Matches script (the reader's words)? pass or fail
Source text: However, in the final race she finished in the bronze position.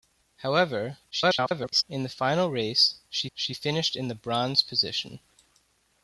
fail